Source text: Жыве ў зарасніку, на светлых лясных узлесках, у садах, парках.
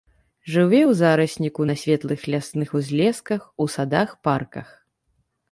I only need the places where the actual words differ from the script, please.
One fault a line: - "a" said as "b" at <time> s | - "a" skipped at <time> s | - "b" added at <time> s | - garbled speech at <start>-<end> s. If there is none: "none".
none